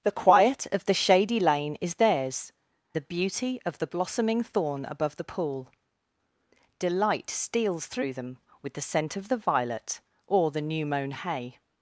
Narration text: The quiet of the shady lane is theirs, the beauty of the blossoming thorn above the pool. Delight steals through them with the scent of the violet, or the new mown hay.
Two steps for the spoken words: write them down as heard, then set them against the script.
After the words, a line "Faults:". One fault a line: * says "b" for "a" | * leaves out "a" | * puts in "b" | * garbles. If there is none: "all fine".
The quiet of the shady lane is theirs, the beauty of the blossoming thorn above the pool. Delight steals through them with the scent of the violet, or the new mown hay.
Faults:
all fine